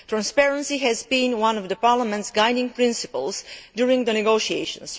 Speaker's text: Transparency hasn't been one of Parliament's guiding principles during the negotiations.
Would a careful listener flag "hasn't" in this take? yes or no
yes